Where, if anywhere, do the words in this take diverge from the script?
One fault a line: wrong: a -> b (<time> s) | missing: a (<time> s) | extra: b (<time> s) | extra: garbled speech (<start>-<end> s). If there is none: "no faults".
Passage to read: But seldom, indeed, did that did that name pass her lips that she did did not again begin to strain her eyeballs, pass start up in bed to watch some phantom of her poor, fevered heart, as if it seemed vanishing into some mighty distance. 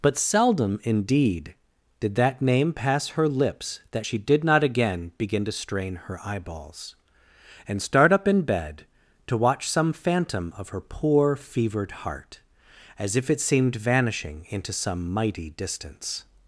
missing: did that (2.4 s)
missing: did (4.4 s)
wrong: pass -> and (7.7 s)